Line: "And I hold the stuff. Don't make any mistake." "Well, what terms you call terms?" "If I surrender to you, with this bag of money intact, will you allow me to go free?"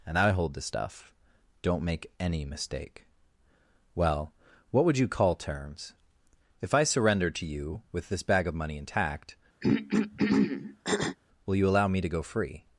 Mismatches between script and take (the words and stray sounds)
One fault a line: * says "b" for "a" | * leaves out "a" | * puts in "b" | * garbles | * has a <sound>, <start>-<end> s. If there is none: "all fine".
* says "would" for "terms"
* has a throat clearing, 9.6-11.2 s